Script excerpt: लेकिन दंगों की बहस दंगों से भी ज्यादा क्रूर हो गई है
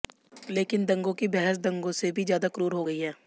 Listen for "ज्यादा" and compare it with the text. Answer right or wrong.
right